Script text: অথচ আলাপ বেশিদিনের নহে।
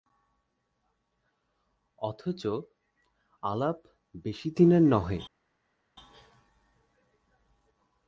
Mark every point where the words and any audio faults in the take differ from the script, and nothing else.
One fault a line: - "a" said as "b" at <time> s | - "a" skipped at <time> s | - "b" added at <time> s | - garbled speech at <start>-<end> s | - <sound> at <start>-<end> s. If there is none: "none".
none